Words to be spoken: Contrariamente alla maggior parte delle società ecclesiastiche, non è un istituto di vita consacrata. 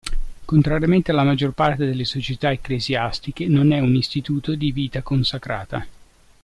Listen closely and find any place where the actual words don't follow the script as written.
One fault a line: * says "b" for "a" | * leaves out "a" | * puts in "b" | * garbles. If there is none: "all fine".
all fine